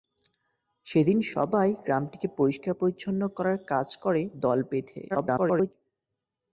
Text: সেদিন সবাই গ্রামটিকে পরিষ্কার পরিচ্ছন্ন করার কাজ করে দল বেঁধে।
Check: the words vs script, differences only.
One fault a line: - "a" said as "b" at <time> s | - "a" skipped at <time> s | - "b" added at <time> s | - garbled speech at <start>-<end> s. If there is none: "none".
- garbled speech at 5.1-5.7 s